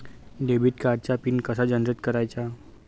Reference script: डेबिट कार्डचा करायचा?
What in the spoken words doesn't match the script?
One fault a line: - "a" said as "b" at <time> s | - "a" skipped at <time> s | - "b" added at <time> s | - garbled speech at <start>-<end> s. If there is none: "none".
- "पिन कसा जनरेट" added at 1.2 s